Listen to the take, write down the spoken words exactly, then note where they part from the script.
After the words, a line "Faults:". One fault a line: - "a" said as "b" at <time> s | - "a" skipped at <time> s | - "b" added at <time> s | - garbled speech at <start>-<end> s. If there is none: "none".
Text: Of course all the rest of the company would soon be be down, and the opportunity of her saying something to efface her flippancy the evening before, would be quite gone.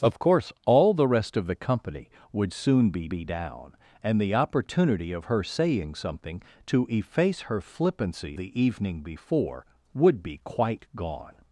Of course all the rest of the company would soon be be down, and the opportunity of her saying something to efface her flippancy the evening before, would be quite gone.
Faults:
none